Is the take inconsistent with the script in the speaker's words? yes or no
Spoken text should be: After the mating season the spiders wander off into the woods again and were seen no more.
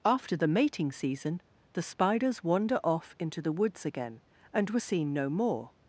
no